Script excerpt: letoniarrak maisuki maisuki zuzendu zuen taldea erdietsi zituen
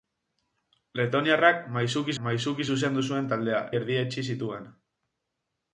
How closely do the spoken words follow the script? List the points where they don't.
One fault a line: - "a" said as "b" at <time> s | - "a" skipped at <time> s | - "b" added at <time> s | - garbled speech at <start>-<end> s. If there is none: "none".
none